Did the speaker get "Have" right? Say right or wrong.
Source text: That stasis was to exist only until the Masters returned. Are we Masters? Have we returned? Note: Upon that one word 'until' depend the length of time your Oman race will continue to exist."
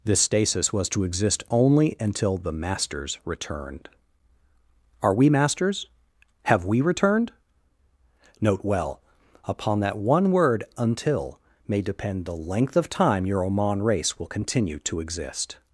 right